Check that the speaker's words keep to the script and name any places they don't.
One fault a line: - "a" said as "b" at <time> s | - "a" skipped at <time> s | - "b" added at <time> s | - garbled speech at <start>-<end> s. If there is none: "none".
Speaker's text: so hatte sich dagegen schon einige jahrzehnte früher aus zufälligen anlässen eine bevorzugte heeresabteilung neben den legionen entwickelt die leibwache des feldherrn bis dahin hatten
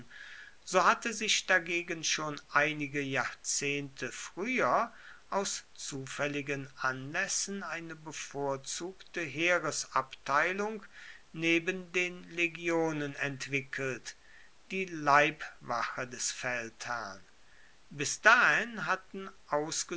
none